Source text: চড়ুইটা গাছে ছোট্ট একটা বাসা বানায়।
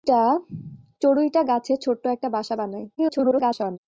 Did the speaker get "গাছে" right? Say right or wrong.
right